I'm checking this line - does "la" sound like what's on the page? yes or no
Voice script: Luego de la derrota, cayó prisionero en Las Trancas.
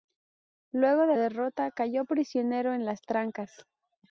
no